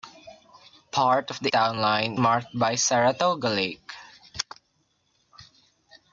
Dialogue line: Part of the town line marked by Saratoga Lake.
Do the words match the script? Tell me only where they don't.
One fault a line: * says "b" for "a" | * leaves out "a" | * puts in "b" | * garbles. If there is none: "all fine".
all fine